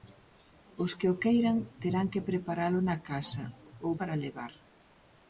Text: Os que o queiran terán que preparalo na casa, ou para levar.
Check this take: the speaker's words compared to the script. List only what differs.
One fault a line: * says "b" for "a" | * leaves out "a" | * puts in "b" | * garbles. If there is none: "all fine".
all fine